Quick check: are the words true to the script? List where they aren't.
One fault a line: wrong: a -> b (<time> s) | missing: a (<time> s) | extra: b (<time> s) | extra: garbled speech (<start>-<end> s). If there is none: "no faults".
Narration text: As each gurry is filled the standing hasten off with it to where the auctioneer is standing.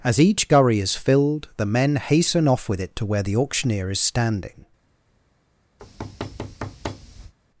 wrong: standing -> men (1.7 s)